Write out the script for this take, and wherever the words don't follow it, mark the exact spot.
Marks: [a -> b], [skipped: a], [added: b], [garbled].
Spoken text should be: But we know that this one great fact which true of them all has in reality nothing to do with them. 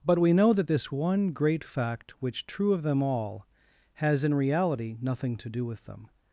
But we know that this one great fact which true of them all has in reality nothing to do with them.